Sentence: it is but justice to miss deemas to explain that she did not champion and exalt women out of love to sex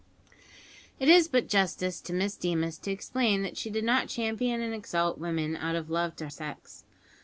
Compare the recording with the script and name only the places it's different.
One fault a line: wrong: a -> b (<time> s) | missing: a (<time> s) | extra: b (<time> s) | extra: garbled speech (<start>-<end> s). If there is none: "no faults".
no faults